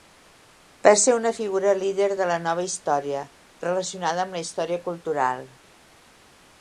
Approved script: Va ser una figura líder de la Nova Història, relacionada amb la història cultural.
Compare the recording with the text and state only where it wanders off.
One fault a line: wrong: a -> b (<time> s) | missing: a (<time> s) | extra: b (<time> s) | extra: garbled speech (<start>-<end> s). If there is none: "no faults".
no faults